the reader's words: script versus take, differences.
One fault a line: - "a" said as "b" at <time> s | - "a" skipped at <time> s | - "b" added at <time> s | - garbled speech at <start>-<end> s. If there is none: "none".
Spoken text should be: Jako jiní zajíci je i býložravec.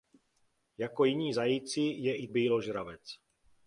none